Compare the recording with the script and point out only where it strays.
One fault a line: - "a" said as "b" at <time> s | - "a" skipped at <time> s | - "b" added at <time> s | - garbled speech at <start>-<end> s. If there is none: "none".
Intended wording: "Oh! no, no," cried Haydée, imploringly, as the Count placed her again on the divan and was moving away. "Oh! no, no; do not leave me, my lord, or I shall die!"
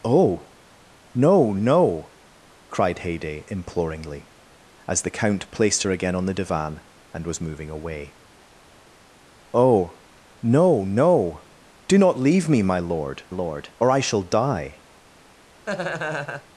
- "lord" added at 13.3 s